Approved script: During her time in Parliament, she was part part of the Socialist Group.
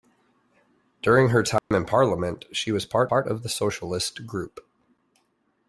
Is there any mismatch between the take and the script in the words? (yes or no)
no